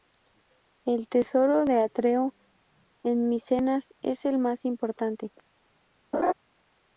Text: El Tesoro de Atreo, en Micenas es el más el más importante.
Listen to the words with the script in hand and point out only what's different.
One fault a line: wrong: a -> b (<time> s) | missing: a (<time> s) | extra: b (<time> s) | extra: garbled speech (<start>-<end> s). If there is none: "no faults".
missing: el más (4.6 s)